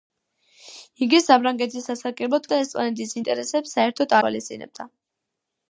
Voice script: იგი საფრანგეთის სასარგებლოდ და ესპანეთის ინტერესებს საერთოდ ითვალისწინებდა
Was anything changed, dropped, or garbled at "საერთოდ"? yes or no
no